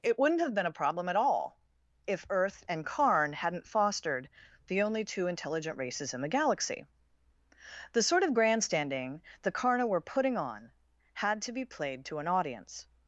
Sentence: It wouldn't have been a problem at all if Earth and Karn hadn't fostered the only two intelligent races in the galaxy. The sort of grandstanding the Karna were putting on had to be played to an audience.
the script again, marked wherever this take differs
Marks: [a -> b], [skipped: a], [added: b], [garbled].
It wouldn't have been a problem at all if Earth and Karn hadn't fostered the only two intelligent races in the galaxy. The sort of grandstanding the Karna were putting on had to be played to an audience.